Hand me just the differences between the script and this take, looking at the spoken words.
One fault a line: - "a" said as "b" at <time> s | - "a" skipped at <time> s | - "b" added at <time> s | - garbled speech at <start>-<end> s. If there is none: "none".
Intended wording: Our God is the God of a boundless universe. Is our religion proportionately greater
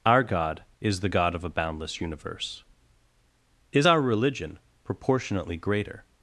none